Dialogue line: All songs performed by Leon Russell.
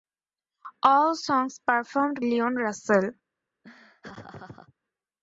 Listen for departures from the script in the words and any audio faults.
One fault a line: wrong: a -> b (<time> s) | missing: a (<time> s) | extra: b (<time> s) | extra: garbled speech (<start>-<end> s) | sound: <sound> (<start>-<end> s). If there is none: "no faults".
missing: by (2.2 s)
sound: laugh (3.6-4.7 s)